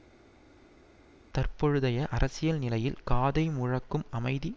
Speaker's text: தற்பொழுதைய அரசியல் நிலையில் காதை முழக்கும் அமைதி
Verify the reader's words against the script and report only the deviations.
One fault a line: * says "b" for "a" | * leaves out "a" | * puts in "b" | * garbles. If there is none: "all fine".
all fine